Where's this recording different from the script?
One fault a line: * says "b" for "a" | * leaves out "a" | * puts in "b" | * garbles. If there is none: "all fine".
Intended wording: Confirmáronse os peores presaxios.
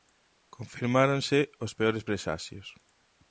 all fine